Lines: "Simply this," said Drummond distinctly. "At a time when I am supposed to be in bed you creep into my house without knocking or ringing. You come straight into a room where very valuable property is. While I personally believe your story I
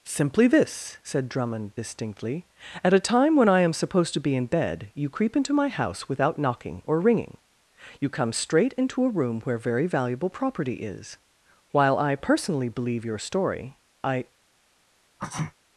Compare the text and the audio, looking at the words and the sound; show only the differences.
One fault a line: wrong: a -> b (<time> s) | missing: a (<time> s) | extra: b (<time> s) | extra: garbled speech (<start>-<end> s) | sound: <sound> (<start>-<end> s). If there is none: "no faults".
sound: sneeze (15.2-15.5 s)